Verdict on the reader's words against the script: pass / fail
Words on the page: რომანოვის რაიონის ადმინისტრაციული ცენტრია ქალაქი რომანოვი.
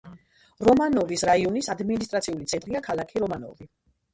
pass